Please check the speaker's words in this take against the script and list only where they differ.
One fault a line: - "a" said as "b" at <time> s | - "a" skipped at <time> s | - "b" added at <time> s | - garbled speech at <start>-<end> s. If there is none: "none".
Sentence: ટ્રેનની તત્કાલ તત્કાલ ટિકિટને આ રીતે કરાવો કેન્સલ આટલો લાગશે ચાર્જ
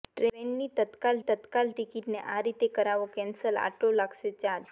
none